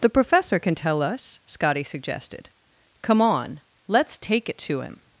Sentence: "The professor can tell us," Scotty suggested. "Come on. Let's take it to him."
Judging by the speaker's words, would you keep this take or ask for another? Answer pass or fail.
pass